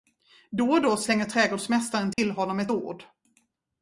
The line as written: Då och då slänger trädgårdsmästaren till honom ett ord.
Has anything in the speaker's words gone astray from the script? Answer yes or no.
no